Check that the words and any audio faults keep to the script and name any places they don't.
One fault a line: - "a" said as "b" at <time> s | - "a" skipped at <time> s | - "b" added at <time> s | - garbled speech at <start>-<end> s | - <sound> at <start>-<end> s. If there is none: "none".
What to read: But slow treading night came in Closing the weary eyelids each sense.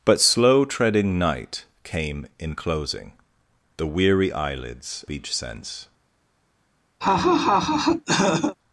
- laugh at 7.0-8.6 s